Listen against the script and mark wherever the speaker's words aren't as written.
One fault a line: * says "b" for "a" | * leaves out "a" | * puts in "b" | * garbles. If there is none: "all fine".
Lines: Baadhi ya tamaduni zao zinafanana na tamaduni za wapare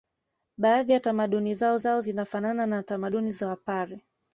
* puts in "zao"